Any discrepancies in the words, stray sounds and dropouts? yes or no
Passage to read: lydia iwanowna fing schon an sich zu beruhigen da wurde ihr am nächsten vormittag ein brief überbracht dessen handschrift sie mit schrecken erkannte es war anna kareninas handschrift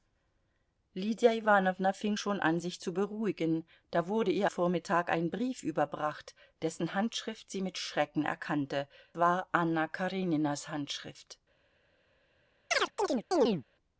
yes